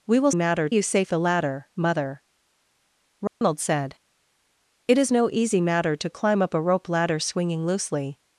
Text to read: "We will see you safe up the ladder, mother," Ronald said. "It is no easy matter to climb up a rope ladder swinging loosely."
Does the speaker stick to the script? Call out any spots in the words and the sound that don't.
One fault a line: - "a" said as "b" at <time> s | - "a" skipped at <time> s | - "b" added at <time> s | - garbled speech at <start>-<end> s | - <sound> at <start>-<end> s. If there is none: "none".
- "see" said as "matter" at 0.3 s
- "up" skipped at 1.1 s
- dropout at 3.3-3.4 s